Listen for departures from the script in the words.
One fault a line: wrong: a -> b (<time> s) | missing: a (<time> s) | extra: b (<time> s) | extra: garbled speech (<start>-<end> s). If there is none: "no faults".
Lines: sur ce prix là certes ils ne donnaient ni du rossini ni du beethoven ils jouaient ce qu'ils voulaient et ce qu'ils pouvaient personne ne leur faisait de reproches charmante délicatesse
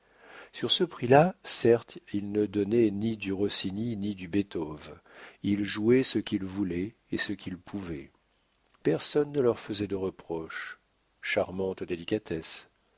no faults